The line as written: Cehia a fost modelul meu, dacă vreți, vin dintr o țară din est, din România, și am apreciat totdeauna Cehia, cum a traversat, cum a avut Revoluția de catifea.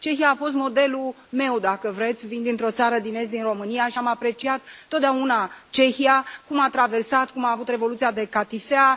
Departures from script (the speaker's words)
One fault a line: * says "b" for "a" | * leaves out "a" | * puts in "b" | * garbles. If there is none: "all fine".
all fine